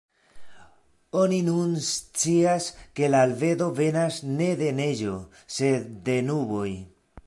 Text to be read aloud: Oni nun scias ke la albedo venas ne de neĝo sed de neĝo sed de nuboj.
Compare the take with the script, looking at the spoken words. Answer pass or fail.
fail